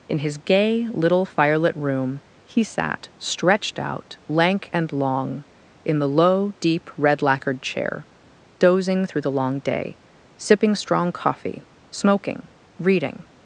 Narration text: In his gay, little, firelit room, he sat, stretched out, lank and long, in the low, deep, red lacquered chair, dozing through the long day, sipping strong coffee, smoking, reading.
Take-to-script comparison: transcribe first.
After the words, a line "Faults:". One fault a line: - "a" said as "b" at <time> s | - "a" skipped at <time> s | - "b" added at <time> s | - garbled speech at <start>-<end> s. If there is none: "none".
In his gay, little, firelit room, he sat, stretched out, lank and long, in the low, deep, red lacquered chair, dozing through the long day, sipping strong coffee, smoking, reading.
Faults:
none